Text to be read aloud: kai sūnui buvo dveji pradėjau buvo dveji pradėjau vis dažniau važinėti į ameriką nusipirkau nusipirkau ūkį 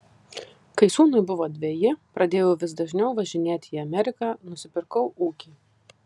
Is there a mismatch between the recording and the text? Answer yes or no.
yes